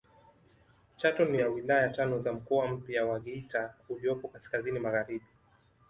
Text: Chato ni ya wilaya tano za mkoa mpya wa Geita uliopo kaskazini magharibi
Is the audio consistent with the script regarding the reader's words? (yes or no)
yes